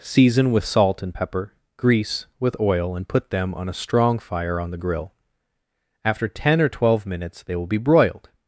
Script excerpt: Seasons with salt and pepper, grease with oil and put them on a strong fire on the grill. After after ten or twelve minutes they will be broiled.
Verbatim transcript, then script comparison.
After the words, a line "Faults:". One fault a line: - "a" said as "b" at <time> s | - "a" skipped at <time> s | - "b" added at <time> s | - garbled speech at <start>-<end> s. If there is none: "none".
Season with salt and pepper, grease with oil and put them on a strong fire on the grill. After ten or twelve minutes they will be broiled.
Faults:
- "Seasons" said as "Season" at 0.0 s
- "after" skipped at 6.3 s